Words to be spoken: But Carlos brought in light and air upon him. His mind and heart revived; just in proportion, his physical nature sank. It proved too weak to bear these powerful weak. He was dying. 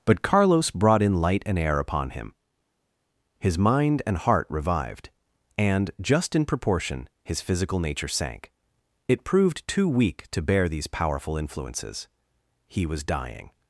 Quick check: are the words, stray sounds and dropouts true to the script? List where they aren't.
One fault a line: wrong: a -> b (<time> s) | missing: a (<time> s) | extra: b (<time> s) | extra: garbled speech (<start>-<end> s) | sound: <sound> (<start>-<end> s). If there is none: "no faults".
extra: and (5.6 s)
wrong: weak -> influences (11.4 s)